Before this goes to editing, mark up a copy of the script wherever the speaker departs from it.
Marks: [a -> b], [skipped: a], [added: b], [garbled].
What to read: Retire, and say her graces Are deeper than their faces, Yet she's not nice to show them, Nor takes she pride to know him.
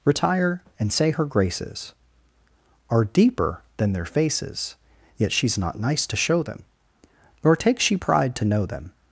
Retire, and say her graces Are deeper than their faces, Yet she's not nice to show them, Nor takes she pride to know [him. -> them]